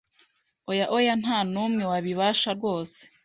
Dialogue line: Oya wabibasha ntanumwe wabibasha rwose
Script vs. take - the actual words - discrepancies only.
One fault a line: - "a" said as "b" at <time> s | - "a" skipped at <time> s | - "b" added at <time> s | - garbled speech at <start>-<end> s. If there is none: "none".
- "wabibasha" said as "oya" at 1.0 s